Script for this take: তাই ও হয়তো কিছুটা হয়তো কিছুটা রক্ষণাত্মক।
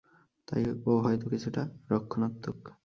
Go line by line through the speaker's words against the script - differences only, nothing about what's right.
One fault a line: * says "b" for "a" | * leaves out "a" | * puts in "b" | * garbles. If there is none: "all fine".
* leaves out "হয়তো কিছুটা"